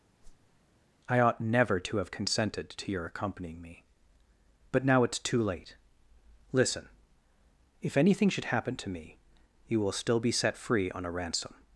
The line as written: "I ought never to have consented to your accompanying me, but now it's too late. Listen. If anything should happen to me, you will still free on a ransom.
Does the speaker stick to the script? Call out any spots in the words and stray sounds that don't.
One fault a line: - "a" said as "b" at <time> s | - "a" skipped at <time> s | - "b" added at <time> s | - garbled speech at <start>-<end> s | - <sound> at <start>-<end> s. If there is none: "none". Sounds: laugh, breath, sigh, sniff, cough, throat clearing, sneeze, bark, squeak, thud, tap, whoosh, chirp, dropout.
- whoosh at 0.2-0.6 s
- "be set" added at 10.2 s